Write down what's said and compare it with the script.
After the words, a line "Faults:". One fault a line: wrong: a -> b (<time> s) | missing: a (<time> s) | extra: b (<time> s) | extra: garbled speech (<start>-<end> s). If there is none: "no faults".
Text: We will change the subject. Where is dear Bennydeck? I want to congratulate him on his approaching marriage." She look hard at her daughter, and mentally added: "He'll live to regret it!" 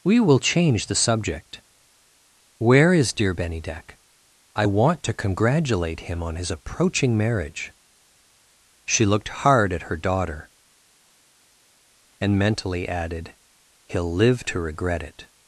We will change the subject. Where is dear Bennydeck? I want to congratulate him on his approaching marriage." She looked hard at her daughter, and mentally added: "He'll live to regret it!"
Faults:
wrong: look -> looked (9.0 s)